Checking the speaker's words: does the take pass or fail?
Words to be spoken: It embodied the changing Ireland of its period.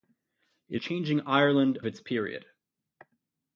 fail